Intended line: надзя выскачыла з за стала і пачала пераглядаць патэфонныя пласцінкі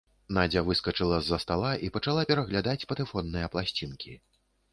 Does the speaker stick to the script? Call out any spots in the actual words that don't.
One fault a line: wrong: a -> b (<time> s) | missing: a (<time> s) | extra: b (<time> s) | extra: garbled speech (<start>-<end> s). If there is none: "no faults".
no faults